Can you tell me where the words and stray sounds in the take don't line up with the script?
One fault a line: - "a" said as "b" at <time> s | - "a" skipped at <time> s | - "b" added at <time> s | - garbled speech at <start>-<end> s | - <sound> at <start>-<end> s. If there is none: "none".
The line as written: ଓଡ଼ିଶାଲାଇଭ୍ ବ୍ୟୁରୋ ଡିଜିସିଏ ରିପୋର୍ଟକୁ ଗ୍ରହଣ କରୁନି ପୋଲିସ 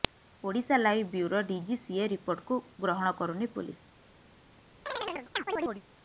- chirp at 4.9-5.8 s